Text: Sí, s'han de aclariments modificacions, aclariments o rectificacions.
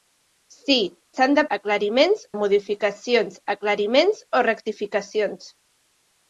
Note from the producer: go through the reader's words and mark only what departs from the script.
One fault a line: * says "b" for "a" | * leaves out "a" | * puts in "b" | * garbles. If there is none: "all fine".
all fine